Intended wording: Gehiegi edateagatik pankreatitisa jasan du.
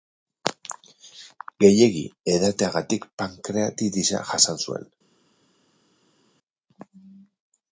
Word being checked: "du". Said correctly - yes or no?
no